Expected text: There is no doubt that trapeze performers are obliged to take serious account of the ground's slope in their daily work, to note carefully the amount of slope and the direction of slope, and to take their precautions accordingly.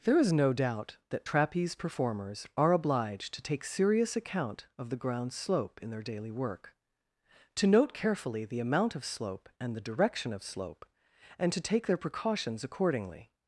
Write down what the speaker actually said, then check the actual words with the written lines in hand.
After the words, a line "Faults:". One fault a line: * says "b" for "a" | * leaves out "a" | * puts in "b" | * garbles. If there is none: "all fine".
There is no doubt that trapeze performers are obliged to take serious account of the ground's slope in their daily work, to note carefully the amount of slope and the direction of slope, and to take their precautions accordingly.
Faults:
all fine